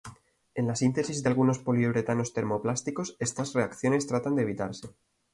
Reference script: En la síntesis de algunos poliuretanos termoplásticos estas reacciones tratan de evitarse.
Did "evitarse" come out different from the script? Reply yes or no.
no